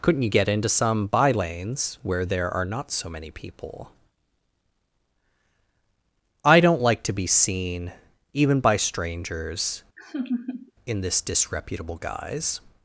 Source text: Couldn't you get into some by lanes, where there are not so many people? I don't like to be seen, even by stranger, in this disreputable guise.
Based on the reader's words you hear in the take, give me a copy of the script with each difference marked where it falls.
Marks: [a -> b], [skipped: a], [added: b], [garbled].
Couldn't you get into some by lanes, where there are not so many people? I don't like to be seen, even by [stranger, -> strangers] in this disreputable guise.